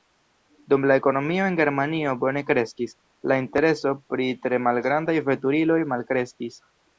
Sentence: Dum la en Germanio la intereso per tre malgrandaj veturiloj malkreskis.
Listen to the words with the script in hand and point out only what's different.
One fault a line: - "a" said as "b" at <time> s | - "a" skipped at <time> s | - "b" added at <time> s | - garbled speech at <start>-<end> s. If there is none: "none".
- "ekonomio" added at 1.0 s
- "bone kreskis" added at 2.2 s
- "per" said as "pri" at 4.1 s